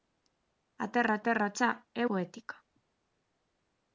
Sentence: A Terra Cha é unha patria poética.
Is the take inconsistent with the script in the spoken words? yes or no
yes